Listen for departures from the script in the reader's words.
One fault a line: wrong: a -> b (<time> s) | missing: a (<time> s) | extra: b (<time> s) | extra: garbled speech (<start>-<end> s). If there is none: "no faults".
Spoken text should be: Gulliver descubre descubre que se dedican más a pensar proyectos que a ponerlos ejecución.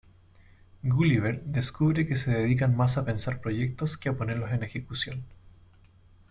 missing: descubre (2.1 s)
extra: en (4.5 s)